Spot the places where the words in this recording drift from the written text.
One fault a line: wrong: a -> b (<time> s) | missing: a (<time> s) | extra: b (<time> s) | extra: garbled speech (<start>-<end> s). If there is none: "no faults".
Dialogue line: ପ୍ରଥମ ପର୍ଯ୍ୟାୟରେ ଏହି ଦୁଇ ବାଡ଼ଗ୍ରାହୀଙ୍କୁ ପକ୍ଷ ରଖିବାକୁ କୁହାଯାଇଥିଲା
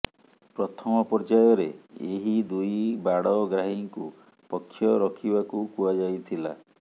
no faults